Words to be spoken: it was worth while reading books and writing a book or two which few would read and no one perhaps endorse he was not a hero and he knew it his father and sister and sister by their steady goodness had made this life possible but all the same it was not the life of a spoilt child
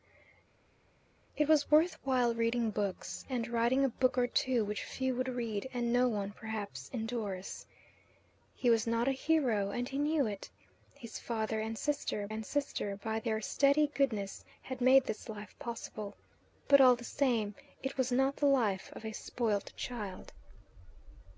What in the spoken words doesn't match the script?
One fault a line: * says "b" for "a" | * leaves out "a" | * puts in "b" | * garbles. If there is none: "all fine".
all fine